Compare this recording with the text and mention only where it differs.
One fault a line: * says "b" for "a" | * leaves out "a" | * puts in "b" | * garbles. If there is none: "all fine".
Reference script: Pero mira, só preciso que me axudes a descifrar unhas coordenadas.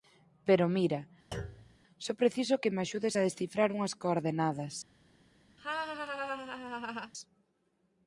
all fine